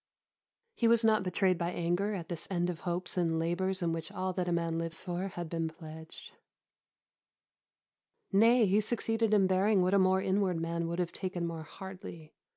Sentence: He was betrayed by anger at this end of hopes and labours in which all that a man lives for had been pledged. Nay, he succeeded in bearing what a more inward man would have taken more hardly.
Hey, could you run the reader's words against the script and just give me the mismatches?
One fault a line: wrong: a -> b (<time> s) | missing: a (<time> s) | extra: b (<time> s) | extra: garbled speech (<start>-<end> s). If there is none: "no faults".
extra: not (1.0 s)